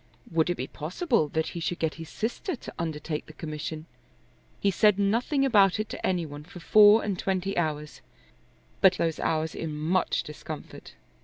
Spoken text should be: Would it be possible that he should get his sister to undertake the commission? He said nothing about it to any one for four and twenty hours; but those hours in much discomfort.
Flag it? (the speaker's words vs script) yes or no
no